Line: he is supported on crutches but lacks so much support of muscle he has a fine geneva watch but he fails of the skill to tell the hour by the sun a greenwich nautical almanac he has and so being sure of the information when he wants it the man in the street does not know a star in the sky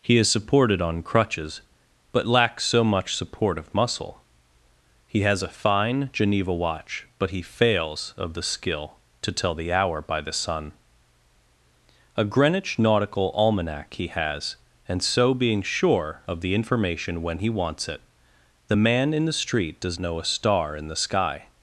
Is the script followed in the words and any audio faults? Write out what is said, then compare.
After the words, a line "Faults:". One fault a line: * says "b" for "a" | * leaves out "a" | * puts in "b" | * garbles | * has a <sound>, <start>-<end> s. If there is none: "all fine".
he is supported on crutches but lacks so much support of muscle he has a fine geneva watch but he fails of the skill to tell the hour by the sun a greenwich nautical almanac he has and so being sure of the information when he wants it the man in the street does know a star in the sky
Faults:
* leaves out "not"